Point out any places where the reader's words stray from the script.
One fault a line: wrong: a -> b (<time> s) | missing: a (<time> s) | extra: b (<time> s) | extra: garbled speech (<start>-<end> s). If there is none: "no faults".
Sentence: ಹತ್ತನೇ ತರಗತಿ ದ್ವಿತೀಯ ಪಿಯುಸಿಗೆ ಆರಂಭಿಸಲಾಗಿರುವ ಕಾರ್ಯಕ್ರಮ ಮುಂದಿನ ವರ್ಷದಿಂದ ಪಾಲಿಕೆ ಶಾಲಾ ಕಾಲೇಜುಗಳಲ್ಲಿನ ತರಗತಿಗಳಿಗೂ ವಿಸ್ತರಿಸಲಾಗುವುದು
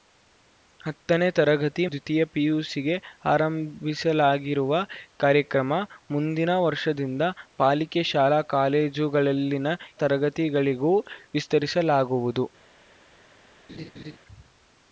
no faults